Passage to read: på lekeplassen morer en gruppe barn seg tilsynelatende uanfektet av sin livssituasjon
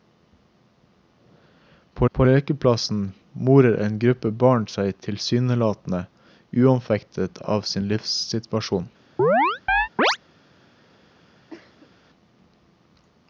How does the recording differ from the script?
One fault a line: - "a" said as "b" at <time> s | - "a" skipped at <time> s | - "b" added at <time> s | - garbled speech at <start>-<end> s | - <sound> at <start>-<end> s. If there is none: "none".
- "på" added at 2.1 s
- chirp at 9.2-10.2 s
- cough at 11.5-11.9 s